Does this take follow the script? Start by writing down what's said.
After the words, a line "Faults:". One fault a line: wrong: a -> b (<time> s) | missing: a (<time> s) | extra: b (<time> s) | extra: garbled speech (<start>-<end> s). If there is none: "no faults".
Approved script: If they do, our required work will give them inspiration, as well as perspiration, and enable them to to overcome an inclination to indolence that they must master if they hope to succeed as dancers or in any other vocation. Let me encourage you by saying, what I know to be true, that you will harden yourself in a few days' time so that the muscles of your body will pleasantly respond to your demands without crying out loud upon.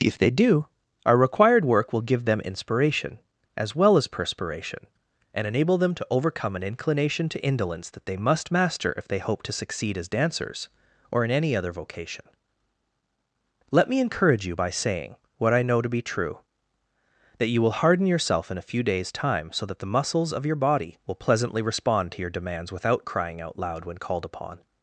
If they do, our required work will give them inspiration, as well as perspiration, and enable them to overcome an inclination to indolence that they must master if they hope to succeed as dancers or in any other vocation. Let me encourage you by saying, what I know to be true, that you will harden yourself in a few days' time so that the muscles of your body will pleasantly respond to your demands without crying out loud when called upon.
Faults:
missing: to (6.1 s)
extra: when called (23.8 s)